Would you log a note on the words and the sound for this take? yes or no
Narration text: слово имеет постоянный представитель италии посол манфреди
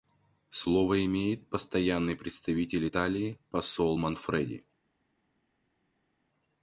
no